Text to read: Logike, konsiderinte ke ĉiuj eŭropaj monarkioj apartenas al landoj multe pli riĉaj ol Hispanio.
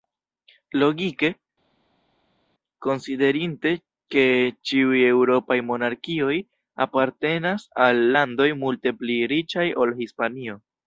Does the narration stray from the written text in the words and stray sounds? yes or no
no